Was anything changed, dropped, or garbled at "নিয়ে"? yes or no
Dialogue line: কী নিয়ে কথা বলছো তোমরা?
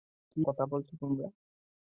yes